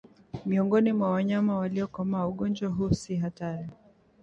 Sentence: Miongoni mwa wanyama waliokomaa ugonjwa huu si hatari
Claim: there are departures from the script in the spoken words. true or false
false